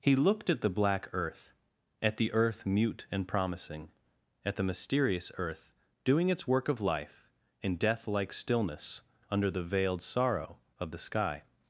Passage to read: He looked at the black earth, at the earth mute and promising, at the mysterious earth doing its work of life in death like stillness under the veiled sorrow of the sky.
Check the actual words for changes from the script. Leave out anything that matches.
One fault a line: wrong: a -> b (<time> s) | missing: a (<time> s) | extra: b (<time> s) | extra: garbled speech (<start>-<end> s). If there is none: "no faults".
no faults